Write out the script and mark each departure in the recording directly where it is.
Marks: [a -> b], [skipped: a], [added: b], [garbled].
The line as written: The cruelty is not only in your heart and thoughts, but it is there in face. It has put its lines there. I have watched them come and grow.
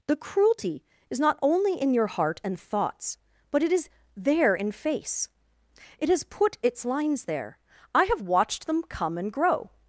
The cruelty is not only in your heart and thoughts, but it is there in face. It has put its lines there. I have watched them come and grow.